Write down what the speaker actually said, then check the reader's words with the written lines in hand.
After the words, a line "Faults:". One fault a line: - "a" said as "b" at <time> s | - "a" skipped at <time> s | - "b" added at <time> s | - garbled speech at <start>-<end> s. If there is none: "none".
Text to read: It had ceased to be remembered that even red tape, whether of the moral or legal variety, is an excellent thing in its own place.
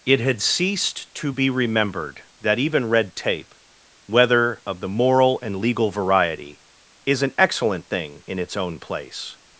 It had ceased to be remembered that even red tape, whether of the moral and legal variety, is an excellent thing in its own place.
Faults:
- "or" said as "and" at 5.4 s